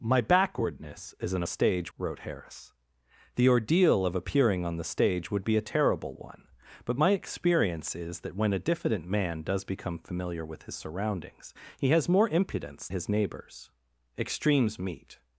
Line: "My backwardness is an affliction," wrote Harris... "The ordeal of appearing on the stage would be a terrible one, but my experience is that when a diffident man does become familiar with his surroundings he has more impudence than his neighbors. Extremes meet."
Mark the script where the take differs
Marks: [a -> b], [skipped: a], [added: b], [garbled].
"My backwardness is an [affliction," -> stage] wrote Harris... "The ordeal of appearing on the stage would be a terrible one, but my experience is that when a diffident man does become familiar with his surroundings he has more impudence [skipped: than] his neighbors. Extremes meet."